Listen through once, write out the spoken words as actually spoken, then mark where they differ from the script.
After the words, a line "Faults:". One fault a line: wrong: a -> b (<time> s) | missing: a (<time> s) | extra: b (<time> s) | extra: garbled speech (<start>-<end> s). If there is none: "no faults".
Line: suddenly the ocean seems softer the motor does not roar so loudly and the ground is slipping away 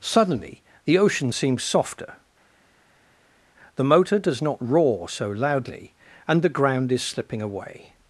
suddenly the ocean seems softer the motor does not roar so loudly and the ground is slipping away
Faults:
no faults